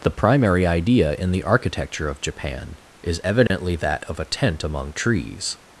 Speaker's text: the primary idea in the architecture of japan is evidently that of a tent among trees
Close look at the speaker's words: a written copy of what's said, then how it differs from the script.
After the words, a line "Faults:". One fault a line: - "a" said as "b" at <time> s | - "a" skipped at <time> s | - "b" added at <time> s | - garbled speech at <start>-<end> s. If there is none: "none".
the primary idea in the architecture of japan is evidently that of a tent among trees
Faults:
none